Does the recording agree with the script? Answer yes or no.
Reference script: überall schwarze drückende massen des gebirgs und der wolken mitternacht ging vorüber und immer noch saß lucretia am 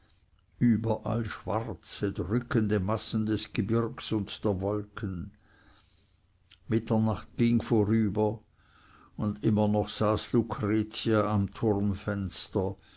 yes